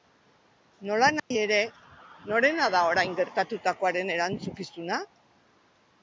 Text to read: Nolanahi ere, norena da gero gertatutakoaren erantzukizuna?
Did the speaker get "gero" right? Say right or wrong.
wrong